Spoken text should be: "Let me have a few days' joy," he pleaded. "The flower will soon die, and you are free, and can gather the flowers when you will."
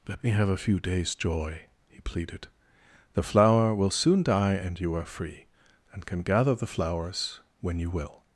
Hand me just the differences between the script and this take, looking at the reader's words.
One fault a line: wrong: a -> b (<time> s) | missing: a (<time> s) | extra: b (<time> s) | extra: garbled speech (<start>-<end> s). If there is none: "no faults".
no faults